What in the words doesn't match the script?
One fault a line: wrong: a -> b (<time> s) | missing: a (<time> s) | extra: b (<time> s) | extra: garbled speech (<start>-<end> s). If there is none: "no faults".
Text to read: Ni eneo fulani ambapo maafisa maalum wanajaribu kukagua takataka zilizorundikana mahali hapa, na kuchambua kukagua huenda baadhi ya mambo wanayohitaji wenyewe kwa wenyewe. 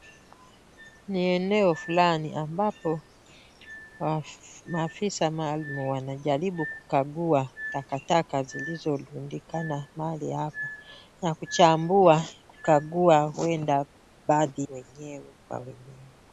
missing: ya mambo wanayohitaji (14.7 s)